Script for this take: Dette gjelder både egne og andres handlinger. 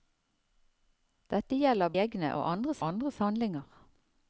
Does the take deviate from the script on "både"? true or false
true